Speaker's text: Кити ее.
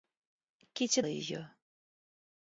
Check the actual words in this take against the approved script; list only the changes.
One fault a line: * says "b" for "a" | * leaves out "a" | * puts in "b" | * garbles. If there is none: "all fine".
all fine